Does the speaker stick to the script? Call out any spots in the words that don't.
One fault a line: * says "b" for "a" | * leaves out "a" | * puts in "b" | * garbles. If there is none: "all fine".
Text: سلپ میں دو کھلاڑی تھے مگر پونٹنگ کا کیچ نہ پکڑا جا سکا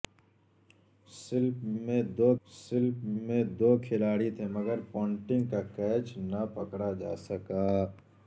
* puts in "سلپ میں دو"